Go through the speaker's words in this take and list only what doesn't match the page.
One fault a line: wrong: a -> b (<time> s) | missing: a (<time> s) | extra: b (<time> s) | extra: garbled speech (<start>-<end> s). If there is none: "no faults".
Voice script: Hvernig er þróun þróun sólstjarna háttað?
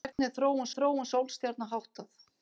no faults